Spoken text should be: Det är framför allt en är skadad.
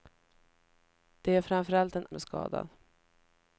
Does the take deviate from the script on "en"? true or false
false